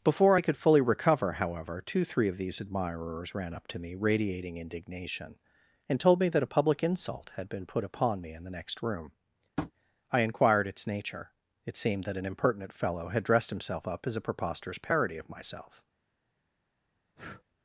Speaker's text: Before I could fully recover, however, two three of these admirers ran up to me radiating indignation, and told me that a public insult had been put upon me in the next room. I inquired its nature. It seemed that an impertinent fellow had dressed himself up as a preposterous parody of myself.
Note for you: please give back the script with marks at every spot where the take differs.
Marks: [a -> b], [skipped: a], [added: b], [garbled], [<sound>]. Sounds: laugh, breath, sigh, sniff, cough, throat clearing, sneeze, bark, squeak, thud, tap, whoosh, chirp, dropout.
Before I could fully recover, however, two three of these admirers ran up to me radiating indignation, and told me that a public insult had been put upon me in the next room. [tap] I inquired its nature. It seemed that an impertinent fellow had dressed himself up as a preposterous parody of myself. [breath]